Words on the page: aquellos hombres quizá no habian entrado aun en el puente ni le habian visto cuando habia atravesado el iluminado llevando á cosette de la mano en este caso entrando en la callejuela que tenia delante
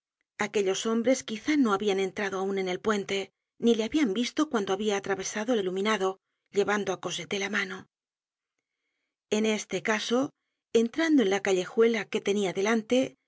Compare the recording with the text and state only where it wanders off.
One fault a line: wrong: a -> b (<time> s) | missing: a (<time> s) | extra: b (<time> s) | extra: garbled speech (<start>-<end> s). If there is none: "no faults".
no faults